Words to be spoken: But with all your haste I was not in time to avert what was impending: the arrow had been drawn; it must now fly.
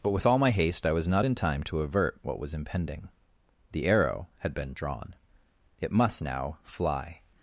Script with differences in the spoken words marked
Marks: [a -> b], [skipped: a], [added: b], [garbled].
But with all [your -> my] haste I was not in time to avert what was impending: the arrow had been drawn; it must now fly.